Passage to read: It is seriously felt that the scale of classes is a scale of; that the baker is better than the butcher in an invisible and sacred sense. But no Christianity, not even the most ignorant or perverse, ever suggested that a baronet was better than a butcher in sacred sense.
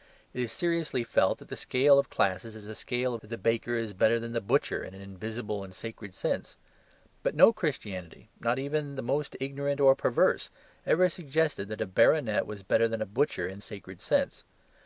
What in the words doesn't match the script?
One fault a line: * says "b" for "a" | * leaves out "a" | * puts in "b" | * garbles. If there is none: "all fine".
all fine